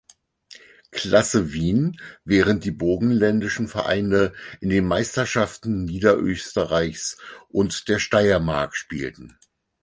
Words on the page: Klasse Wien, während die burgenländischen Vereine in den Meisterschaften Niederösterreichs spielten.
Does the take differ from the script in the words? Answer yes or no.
yes